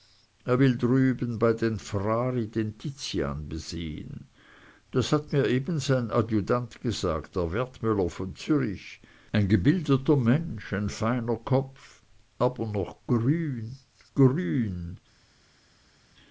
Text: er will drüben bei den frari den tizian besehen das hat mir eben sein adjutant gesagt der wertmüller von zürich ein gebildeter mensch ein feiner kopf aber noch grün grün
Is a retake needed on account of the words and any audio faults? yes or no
no